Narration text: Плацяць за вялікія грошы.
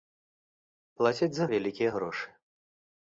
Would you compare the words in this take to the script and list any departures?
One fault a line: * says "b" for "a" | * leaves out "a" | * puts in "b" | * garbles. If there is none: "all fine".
all fine